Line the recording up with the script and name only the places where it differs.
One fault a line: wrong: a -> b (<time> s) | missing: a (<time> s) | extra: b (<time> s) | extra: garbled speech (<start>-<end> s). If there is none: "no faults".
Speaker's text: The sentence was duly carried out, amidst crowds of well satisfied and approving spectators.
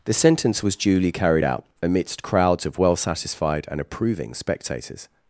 no faults